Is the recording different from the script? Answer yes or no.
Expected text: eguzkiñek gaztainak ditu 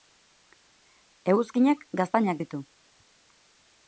no